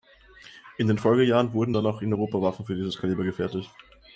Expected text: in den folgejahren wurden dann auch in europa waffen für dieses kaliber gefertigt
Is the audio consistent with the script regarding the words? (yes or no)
yes